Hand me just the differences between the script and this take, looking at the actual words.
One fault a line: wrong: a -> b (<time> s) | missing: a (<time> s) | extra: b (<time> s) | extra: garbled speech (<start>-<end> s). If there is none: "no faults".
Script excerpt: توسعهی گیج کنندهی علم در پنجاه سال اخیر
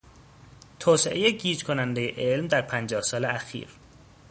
no faults